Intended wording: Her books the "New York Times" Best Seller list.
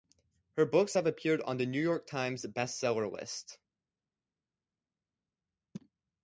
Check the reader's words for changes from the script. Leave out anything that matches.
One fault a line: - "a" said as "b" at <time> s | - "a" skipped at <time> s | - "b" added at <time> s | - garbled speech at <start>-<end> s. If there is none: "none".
- "have appeared on" added at 0.9 s